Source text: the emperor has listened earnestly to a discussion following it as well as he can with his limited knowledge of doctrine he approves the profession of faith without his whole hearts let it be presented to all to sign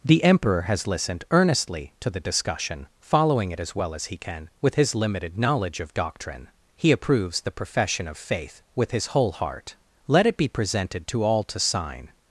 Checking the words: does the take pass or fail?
fail